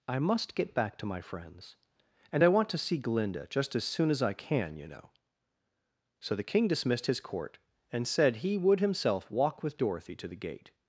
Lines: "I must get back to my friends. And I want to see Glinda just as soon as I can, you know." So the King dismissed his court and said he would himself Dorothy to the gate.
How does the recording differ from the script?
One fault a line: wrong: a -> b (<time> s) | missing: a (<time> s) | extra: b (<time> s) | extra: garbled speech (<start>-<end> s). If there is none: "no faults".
extra: walk with (9.3 s)